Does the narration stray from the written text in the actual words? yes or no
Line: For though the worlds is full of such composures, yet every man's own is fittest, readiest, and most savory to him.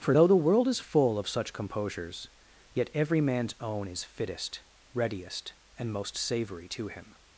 yes